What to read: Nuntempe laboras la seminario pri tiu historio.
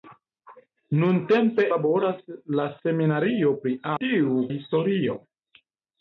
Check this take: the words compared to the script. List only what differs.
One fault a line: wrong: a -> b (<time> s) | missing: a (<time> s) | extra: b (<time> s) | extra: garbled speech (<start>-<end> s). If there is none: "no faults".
no faults